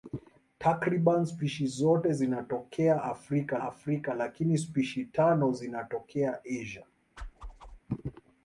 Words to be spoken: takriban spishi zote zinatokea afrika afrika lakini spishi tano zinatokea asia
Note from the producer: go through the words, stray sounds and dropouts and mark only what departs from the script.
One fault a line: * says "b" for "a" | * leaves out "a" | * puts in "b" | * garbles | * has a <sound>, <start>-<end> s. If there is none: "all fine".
* has a whoosh, 7.2-7.8 s